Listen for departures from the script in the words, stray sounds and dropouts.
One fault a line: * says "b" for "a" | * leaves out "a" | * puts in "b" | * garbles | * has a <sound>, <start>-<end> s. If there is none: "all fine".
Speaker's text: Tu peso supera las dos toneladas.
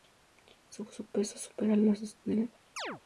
* says "Su" for "Tu"
* has a chirp, 2.8-3.0 s